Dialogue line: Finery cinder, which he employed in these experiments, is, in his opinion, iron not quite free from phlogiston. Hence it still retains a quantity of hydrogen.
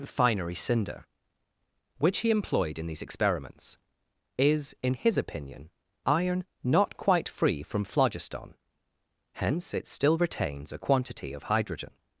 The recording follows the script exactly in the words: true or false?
true